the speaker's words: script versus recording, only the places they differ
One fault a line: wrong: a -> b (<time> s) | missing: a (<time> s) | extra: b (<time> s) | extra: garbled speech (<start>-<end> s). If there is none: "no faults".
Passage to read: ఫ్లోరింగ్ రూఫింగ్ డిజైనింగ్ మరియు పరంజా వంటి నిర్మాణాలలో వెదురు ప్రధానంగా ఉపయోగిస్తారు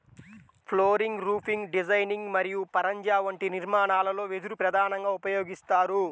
no faults